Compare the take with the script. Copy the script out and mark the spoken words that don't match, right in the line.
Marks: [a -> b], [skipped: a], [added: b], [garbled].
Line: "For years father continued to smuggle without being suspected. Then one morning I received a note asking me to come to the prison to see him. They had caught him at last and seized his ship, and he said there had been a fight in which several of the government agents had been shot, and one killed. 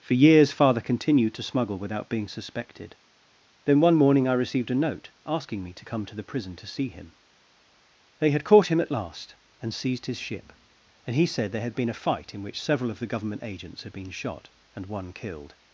"For years father continued to smuggle without being suspected. Then one morning I received a note asking me to come to the prison to see him. They had caught him at last and seized his ship, and he said there had been a fight in which several of the government agents had been shot, and one killed.